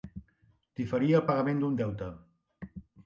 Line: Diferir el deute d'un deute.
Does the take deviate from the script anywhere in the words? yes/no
yes